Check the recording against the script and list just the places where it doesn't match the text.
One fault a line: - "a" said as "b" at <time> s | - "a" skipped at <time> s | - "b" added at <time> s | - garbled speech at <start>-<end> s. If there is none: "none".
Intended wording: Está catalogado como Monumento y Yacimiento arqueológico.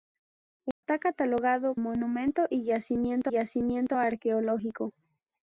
- "como" skipped at 1.8 s
- "Yacimiento" added at 3.3 s